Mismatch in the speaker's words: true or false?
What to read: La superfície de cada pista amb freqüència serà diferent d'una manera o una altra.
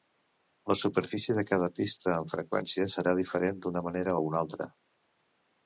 false